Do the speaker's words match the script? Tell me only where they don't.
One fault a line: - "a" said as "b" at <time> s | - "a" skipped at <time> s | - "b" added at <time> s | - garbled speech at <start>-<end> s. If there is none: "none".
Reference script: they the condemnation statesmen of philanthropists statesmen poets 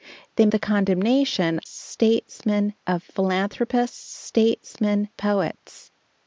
none